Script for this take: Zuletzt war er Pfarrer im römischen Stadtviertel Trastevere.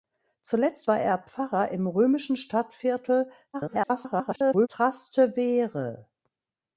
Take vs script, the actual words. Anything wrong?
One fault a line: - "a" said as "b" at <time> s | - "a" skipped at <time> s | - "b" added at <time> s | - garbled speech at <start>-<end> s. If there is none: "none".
- garbled speech at 3.5-4.7 s